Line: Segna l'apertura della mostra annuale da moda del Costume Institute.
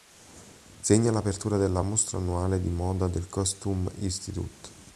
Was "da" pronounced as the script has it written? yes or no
no